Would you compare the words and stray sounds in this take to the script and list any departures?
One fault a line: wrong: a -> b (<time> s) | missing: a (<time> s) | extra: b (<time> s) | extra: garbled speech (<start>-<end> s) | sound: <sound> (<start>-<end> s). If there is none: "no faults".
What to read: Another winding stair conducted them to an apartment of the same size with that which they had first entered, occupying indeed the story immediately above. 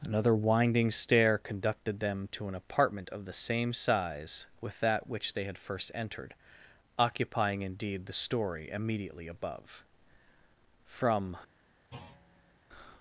extra: From (10.9 s)
sound: thud (11.9-12.6 s)